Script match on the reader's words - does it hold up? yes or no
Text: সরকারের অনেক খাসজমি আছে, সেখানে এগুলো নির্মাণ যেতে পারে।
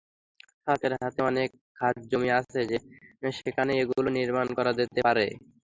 no